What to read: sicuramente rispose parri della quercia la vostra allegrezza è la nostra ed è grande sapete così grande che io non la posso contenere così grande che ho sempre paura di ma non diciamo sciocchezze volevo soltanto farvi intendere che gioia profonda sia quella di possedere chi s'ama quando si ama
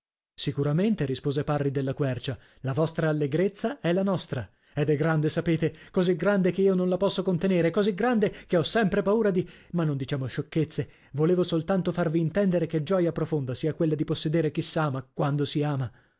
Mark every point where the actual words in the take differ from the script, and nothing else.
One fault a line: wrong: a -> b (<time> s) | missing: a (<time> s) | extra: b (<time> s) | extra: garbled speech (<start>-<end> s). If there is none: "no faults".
no faults